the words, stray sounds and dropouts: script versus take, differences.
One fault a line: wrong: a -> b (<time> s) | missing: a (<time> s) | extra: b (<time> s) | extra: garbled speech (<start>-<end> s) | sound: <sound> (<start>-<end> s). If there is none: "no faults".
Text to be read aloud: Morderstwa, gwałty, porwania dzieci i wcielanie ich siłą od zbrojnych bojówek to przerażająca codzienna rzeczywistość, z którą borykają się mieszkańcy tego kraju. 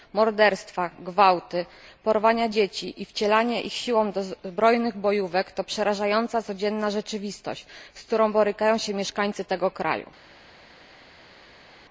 wrong: od -> do (4.1 s)